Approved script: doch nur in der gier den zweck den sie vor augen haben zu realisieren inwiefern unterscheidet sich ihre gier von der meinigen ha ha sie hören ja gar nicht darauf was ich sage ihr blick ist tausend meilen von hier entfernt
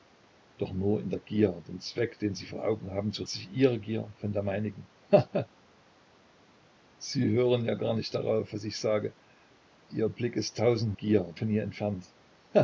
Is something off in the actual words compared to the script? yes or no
yes